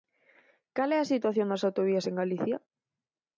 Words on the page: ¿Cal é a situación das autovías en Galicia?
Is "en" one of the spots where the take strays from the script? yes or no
no